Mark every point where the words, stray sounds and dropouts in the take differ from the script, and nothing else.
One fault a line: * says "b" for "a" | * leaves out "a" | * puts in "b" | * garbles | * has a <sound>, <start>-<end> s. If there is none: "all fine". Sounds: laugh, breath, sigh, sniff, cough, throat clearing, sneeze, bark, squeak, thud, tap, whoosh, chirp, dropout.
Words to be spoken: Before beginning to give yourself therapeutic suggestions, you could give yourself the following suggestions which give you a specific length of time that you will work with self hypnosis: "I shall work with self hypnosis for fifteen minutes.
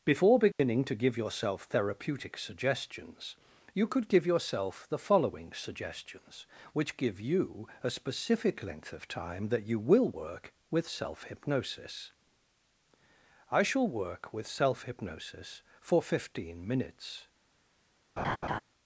* has a dropout, 0.5-0.6 s
* has a laugh, 18.2-18.6 s